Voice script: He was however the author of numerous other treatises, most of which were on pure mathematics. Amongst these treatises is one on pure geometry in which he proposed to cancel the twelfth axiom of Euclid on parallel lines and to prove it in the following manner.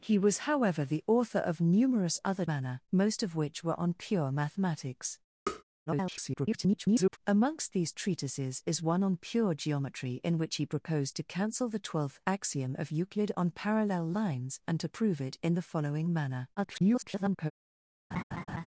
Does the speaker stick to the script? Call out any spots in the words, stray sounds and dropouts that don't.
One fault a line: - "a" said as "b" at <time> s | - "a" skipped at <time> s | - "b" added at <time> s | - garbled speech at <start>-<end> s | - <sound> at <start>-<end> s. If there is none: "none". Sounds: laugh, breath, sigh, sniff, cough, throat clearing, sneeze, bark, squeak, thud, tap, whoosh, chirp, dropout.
- "treatises" said as "manner" at 2.5 s
- tap at 5.5-5.6 s
- garbled speech at 5.9-7.2 s
- garbled speech at 16.6-17.5 s
- laugh at 18.1-18.7 s